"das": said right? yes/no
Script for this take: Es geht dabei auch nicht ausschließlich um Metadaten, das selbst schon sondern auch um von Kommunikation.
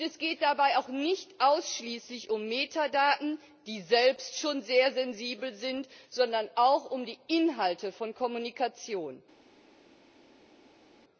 no